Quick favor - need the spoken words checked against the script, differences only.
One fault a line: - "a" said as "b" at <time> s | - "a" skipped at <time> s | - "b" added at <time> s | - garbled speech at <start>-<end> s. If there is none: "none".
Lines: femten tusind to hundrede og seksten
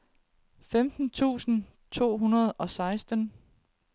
none